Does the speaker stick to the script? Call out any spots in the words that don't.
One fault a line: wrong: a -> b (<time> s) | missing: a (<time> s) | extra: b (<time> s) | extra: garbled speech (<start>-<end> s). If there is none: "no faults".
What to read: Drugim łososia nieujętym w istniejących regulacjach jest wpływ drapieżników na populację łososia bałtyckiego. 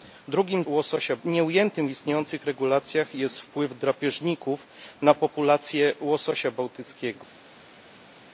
no faults